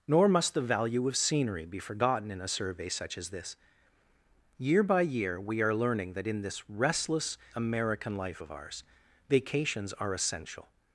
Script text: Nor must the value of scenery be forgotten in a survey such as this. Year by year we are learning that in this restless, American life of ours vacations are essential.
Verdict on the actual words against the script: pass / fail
pass